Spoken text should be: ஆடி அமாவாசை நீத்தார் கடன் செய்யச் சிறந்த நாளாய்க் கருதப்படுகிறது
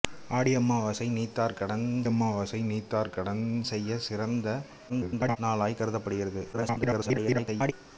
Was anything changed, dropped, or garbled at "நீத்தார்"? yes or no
no